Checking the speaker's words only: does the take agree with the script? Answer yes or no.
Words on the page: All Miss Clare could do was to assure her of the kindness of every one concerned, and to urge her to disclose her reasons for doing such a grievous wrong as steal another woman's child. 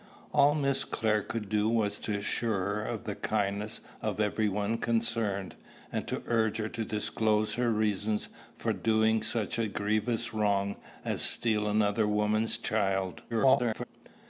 no